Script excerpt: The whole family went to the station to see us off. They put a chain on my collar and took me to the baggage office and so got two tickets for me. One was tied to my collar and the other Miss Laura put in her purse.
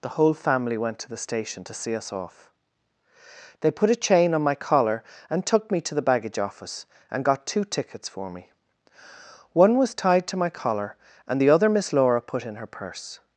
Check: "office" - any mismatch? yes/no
no